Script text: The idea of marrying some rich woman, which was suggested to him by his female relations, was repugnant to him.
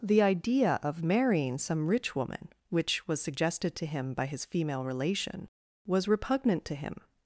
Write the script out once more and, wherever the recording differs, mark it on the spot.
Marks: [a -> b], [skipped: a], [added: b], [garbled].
The idea of marrying some rich woman, which was suggested to him by his female [relations, -> relation] was repugnant to him.